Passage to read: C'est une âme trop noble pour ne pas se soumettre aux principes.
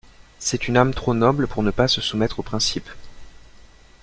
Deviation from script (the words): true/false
false